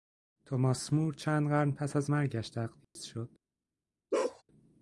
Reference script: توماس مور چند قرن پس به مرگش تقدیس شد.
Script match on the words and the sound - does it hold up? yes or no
no